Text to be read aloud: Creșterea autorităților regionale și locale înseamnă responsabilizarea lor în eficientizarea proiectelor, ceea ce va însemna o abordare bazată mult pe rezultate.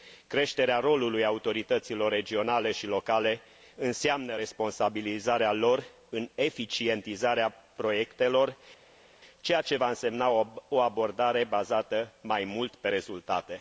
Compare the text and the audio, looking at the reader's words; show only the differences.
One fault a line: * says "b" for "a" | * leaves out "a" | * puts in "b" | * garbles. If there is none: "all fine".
* puts in "rolului"
* puts in "mai"